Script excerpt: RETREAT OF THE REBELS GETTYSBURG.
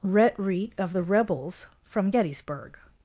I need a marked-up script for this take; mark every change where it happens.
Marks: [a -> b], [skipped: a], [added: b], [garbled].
RETREAT OF THE REBELS [added: FROM] GETTYSBURG.